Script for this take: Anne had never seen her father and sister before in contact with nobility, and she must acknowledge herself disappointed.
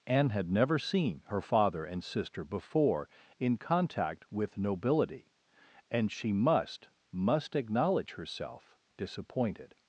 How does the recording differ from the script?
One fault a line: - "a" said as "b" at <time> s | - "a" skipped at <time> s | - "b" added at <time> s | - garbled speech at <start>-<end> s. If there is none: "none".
- "must" added at 7.1 s